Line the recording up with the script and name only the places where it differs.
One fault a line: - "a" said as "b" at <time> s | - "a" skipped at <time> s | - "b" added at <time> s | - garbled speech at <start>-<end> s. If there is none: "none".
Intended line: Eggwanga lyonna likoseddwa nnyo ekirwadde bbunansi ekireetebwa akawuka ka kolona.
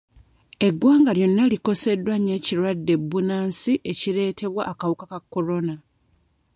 none